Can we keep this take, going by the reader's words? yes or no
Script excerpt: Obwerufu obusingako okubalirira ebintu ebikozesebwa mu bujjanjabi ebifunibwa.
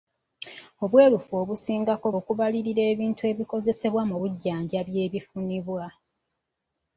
yes